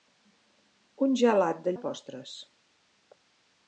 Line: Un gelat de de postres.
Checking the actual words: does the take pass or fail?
pass